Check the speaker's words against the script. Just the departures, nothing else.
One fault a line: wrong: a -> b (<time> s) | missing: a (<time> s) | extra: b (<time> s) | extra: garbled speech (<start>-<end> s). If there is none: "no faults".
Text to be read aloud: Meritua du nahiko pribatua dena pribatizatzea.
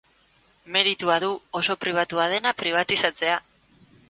wrong: nahiko -> oso (1.6 s)